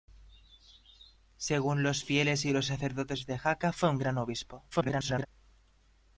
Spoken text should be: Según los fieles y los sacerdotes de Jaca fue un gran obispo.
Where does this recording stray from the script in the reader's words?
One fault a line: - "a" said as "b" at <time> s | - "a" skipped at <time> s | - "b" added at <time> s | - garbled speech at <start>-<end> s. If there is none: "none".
- garbled speech at 4.7-5.3 s